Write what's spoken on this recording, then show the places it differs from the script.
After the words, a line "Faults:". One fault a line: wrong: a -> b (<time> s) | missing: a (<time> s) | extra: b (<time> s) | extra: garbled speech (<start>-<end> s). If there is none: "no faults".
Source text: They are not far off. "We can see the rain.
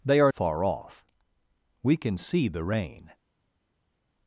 They are far off. "We can see the rain.
Faults:
missing: not (0.3 s)